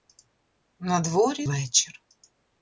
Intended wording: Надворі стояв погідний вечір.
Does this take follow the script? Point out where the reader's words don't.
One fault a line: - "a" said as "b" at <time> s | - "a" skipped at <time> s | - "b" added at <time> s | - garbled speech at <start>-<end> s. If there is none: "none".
- "стояв погідний" skipped at 1.5 s